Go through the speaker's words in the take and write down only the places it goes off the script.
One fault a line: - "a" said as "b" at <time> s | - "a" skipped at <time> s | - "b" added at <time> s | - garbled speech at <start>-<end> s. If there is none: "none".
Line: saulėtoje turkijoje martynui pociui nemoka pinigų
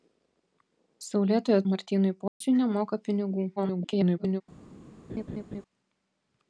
- "turkijoje" skipped at 1.6 s
- garbled speech at 3.6-4.4 s